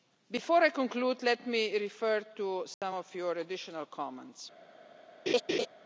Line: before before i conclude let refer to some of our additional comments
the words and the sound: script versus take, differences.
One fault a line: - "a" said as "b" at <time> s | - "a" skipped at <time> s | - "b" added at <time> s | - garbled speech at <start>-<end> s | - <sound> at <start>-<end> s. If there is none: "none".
- "before" skipped at 0.6 s
- "me" added at 1.4 s
- dropout at 2.7-2.8 s
- "our" said as "your" at 3.1 s
- laugh at 5.3-5.7 s